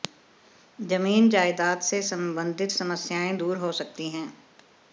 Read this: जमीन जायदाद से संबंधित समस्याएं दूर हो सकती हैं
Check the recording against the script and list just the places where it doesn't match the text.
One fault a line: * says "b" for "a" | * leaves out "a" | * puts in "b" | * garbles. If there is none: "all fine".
all fine